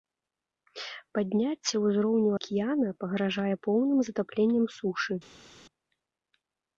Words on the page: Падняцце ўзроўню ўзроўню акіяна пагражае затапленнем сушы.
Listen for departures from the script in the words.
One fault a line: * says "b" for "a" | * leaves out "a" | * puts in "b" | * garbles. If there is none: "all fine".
* leaves out "ўзроўню"
* puts in "поўным"